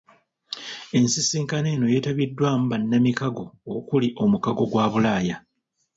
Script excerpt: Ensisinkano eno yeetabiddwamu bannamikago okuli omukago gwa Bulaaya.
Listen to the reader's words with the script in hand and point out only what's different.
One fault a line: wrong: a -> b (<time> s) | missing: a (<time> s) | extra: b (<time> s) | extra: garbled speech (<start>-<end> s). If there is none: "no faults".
no faults